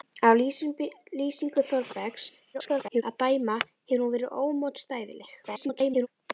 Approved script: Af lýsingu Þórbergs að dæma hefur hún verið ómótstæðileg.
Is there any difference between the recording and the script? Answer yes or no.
yes